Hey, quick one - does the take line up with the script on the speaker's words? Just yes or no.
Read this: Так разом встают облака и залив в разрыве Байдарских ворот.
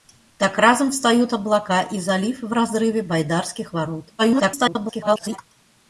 no